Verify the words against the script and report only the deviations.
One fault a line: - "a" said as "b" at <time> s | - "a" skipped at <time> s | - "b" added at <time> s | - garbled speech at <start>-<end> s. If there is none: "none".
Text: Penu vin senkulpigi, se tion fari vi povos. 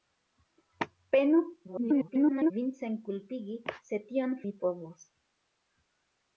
- garbled speech at 1.7-2.5 s
- "fari" skipped at 4.4 s